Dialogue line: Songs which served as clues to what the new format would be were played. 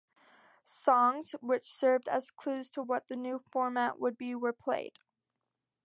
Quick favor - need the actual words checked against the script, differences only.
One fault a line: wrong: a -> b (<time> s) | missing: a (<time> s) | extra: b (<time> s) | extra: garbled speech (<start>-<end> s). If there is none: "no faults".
no faults